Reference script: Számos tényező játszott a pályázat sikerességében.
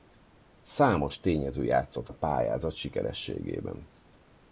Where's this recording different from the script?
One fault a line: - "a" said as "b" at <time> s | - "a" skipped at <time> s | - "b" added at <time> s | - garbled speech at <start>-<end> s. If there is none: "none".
none